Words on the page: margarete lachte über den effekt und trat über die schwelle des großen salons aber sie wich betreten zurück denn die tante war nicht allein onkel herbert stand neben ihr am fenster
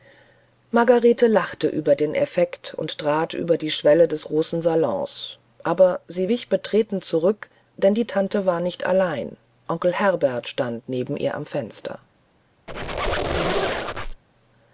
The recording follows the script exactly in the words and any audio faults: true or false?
false